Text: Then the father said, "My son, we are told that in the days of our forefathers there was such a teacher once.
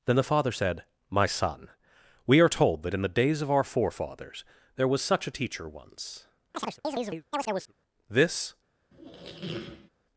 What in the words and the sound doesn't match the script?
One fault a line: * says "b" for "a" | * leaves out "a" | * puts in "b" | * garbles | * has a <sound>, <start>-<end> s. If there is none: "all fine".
* has a chirp, 6.5-7.7 s
* puts in "This"
* has a squeak, 8.9-9.9 s